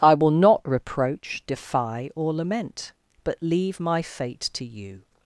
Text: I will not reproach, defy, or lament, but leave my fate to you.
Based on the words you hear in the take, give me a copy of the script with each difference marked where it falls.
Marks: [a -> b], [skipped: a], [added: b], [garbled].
I will not reproach, defy, or lament, but leave my fate to you.